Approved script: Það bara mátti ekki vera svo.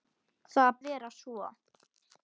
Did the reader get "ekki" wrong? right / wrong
wrong